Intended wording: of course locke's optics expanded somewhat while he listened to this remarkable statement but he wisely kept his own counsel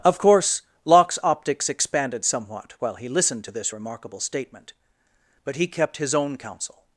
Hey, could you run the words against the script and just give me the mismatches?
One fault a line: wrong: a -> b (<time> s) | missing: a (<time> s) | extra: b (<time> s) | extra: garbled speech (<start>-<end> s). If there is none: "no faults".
missing: wisely (5.7 s)